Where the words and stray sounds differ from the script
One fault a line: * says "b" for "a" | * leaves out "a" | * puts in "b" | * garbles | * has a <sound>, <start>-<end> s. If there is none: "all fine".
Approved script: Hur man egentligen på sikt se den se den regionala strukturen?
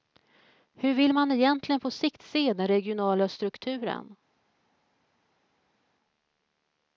* puts in "vill"
* leaves out "se den"